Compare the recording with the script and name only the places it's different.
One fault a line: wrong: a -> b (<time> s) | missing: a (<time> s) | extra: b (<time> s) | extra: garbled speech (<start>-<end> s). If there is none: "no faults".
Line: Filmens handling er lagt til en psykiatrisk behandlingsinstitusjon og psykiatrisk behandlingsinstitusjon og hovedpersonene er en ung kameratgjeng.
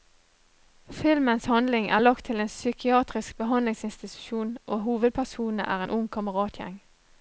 missing: psykiatrisk behandlingsinstitusjon og (4.8 s)